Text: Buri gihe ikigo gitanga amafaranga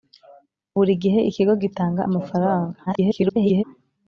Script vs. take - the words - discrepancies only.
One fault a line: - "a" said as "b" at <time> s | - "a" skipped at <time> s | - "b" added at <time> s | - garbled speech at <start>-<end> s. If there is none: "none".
- garbled speech at 2.9-3.6 s